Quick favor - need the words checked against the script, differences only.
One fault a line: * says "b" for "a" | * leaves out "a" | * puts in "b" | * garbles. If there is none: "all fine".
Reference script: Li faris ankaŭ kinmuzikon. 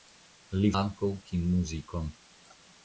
* leaves out "faris"